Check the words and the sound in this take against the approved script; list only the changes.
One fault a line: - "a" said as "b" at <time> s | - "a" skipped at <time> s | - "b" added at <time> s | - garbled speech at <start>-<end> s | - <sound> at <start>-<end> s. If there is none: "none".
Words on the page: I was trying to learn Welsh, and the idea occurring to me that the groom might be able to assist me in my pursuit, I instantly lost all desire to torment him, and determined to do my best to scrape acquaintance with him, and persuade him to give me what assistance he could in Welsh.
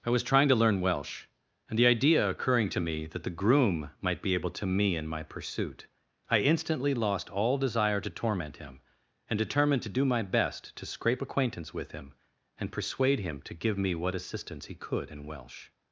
- "assist" skipped at 4.7 s